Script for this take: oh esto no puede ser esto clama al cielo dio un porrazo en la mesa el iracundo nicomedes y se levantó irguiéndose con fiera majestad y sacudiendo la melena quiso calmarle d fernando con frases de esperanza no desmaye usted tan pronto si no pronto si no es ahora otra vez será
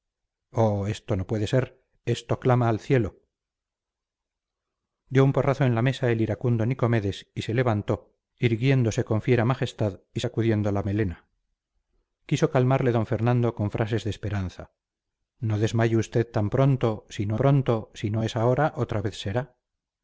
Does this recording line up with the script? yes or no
yes